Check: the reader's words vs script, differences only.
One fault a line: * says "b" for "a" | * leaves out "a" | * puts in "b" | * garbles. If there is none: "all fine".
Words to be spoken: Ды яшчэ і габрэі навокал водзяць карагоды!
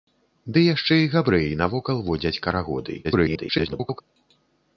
* garbles